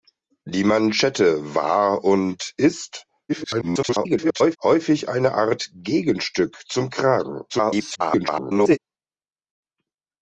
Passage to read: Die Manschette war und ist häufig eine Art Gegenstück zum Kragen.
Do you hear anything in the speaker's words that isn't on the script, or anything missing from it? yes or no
yes